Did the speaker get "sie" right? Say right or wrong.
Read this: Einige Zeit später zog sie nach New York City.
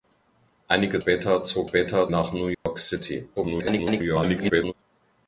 wrong